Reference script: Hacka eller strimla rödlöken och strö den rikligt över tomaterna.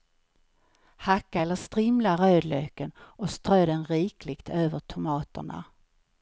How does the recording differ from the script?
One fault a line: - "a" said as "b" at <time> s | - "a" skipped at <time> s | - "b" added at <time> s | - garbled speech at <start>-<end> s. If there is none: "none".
none